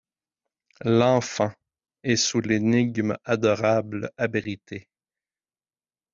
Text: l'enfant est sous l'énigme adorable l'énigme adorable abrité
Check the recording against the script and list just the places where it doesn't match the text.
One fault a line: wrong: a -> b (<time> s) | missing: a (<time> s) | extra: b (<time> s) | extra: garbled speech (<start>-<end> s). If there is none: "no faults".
missing: l'énigme adorable (4.1 s)